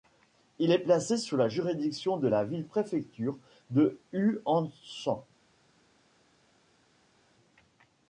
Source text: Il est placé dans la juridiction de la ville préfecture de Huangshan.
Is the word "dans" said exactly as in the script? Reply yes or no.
no